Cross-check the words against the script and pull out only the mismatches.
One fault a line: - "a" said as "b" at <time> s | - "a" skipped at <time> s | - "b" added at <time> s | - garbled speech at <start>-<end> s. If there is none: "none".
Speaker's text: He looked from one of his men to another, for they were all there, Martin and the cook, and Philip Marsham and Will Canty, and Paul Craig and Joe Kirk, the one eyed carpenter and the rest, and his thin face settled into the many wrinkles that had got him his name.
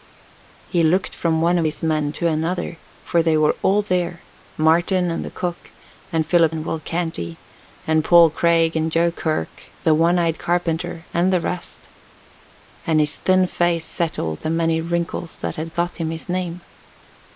- "Marsham" skipped at 6.5 s
- "into" skipped at 14.4 s